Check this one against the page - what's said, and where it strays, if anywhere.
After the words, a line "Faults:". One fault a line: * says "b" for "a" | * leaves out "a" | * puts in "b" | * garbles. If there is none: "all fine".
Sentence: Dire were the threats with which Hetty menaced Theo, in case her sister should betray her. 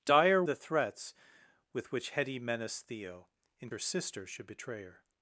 Dire the threats with which Hetty menaced Theo, in her sister should betray her.
Faults:
* leaves out "were"
* leaves out "case"